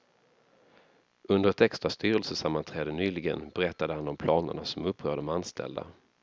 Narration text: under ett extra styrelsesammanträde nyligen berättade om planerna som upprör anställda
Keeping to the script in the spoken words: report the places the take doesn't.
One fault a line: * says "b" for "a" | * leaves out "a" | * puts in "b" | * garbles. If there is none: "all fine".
* puts in "han"
* puts in "de"